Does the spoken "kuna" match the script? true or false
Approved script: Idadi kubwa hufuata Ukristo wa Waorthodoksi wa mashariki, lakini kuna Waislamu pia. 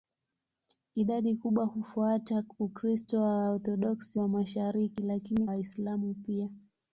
false